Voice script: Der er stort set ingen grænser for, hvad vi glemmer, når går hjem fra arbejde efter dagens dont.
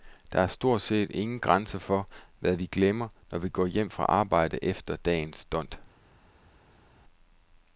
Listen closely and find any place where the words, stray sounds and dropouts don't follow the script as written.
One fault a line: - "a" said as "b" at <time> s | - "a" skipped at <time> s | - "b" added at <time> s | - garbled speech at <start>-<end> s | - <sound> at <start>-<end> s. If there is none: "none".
- "vi" added at 3.4 s